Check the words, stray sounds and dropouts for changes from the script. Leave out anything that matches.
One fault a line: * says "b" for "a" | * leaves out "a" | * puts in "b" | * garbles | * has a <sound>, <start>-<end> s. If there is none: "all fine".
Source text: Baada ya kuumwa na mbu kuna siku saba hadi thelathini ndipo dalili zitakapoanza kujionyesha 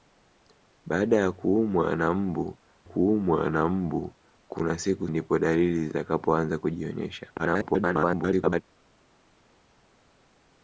* says "kuumwa na mbu kuna siku" for "kuna siku saba hadi thelathini"
* garbles